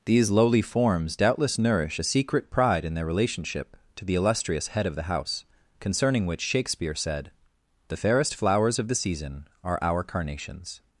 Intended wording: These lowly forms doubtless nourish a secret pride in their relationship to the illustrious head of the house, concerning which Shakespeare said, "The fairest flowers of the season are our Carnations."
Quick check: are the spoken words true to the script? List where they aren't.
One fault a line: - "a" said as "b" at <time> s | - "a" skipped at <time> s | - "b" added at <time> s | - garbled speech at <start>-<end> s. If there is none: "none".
none